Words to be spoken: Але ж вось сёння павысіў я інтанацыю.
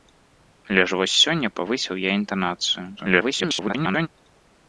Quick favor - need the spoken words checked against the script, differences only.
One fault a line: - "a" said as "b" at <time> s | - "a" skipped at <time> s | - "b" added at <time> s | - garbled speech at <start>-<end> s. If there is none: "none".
- garbled speech at 3.0-4.1 s